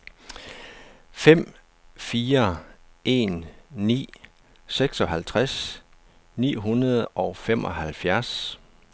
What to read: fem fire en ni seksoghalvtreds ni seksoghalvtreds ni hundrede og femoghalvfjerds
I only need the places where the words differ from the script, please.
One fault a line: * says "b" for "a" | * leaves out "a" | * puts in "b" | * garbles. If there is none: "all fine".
* leaves out "seksoghalvtreds ni"